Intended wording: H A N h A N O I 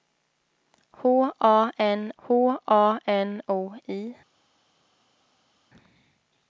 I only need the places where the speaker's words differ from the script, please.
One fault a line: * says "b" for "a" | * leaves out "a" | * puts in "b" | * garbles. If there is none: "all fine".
all fine